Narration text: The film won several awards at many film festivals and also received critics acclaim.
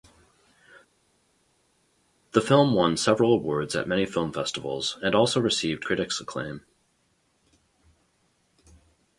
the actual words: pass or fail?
pass